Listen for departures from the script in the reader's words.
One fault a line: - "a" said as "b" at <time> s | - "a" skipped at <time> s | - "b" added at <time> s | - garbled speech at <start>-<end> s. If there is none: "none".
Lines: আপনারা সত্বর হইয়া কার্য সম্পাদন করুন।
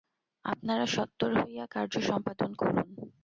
none